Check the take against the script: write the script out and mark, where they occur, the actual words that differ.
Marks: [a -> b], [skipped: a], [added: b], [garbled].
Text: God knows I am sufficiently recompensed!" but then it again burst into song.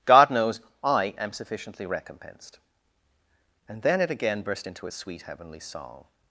God knows I am sufficiently recompensed!" [but -> and] then it again burst into [added: its sweet heavenly] song.